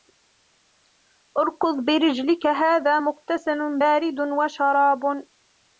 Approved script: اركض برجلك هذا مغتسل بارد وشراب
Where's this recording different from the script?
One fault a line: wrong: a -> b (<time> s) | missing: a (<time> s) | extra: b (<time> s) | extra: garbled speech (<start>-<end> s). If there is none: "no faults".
no faults